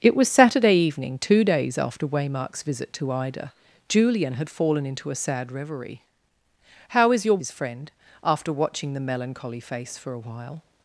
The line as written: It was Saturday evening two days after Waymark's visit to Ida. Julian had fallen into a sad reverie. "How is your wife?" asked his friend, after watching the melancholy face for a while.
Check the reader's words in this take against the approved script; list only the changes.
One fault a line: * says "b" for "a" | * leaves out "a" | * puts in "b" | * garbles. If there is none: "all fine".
* leaves out "wife asked"